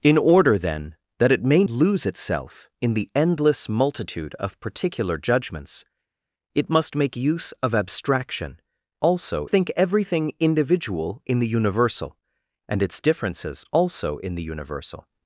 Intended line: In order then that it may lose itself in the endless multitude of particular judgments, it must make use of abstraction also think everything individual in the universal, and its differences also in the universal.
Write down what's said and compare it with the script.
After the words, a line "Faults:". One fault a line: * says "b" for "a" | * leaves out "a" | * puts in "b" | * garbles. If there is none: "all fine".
In order then that it may lose itself in the endless multitude of particular judgments, it must make use of abstraction also think everything individual in the universal, and its differences also in the universal.
Faults:
all fine